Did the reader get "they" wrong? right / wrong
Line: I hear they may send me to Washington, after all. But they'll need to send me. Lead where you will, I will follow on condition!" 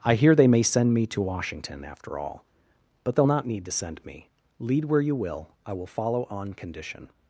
right